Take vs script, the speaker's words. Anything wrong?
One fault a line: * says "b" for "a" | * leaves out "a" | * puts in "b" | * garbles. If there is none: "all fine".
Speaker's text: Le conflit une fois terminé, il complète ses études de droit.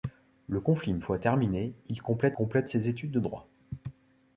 * puts in "complète"